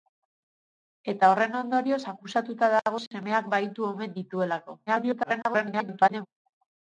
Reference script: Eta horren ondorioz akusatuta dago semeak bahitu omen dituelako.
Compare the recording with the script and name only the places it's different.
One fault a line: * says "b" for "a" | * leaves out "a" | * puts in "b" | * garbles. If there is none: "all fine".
* garbles